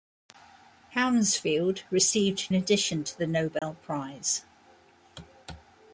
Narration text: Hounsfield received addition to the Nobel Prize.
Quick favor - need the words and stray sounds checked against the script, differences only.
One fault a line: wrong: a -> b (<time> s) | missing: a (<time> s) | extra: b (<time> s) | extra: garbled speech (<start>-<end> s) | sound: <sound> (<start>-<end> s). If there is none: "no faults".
sound: dropout (3.6-3.6 s)